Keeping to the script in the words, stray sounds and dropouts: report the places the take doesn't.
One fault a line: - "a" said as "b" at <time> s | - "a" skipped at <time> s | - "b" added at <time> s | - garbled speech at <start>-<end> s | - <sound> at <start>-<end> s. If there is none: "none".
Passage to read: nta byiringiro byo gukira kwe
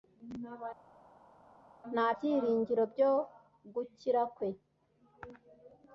none